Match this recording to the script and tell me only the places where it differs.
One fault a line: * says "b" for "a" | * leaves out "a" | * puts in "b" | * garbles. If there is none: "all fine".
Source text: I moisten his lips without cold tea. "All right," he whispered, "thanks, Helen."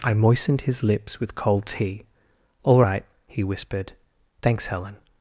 * says "moistened" for "moisten"
* says "with" for "without"